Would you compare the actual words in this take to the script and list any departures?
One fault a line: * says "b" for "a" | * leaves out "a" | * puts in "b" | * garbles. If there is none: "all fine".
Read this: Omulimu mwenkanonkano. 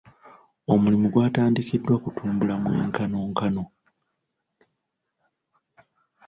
* puts in "gwatandikiddwa kutumbula"